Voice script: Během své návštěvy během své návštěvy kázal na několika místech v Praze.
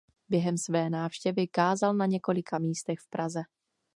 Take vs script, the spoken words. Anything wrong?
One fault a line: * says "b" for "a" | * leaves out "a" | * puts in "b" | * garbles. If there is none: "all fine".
* leaves out "během své návštěvy"